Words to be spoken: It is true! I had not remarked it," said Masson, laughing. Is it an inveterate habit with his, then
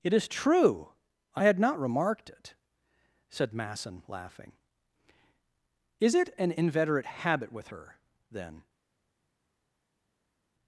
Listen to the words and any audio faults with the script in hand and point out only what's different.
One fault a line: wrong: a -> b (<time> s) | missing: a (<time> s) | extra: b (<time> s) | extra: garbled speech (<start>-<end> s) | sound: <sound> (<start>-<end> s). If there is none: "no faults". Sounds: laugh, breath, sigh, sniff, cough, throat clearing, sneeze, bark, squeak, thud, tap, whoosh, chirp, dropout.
wrong: his -> her (7.7 s)